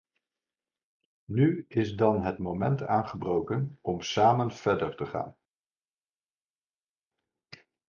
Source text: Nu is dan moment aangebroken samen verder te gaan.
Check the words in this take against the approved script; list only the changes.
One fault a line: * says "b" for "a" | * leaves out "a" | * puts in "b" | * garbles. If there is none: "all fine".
* puts in "het"
* puts in "om"